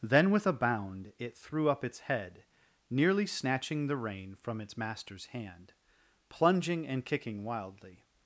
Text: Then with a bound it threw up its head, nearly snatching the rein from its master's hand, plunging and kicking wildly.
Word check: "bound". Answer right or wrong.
right